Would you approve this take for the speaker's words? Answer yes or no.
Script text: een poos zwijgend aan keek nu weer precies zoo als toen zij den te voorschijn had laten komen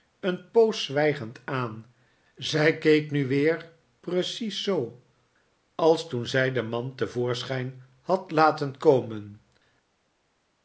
no